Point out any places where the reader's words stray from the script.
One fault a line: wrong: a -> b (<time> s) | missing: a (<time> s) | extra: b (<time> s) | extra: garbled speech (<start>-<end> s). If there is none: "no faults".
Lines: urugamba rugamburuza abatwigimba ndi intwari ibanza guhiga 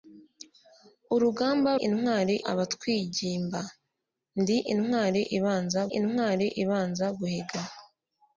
wrong: rugamburuza -> intwari (1.9 s)
extra: intwari ibanza (6.0 s)